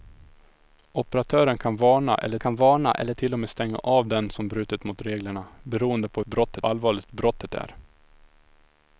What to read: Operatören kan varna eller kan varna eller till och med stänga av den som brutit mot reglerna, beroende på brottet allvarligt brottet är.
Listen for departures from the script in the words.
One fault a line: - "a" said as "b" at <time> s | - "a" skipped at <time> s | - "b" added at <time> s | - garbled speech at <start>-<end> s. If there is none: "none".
none